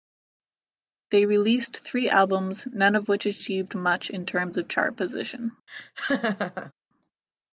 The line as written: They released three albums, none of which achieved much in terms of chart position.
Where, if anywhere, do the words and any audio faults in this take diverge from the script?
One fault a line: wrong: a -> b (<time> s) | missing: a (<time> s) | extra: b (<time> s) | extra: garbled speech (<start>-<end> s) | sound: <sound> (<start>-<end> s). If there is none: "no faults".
sound: laugh (5.7-6.7 s)